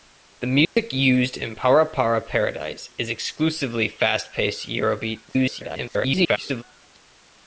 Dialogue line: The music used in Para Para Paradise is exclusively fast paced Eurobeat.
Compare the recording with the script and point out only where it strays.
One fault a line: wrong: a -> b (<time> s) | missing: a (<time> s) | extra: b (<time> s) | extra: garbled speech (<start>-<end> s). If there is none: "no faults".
extra: garbled speech (5.3-6.6 s)